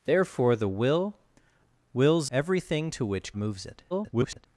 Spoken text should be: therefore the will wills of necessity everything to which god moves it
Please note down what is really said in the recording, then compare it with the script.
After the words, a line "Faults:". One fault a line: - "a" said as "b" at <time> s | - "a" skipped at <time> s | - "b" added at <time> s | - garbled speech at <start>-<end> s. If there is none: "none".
therefore the will wills everything to which moves it [garbled]
Faults:
- "of necessity" skipped at 2.3 s
- "god" skipped at 3.3 s
- garbled speech at 3.9-4.5 s